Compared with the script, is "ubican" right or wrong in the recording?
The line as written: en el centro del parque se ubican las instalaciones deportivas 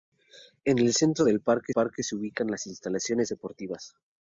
right